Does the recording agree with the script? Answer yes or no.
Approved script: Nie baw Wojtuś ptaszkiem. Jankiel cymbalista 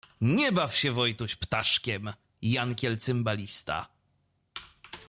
no